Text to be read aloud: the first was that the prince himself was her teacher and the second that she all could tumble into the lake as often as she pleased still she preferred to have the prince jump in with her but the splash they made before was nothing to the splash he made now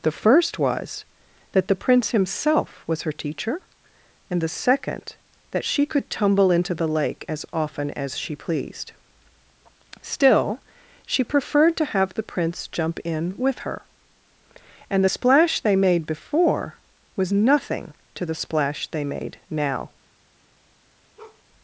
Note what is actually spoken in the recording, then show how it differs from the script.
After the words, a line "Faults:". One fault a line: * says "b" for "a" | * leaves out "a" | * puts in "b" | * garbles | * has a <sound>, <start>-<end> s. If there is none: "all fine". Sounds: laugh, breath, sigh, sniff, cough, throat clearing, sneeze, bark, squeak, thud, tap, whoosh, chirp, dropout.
the first was that the prince himself was her teacher and the second that she could tumble into the lake as often as she pleased still she preferred to have the prince jump in with her and the splash they made before was nothing to the splash they made now
Faults:
* leaves out "all"
* says "and" for "but"
* says "they" for "he"
* has a bark, 21.2-21.4 s